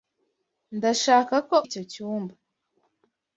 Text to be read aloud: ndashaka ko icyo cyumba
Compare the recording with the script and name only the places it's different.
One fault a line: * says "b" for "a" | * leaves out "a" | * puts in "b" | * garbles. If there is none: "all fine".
all fine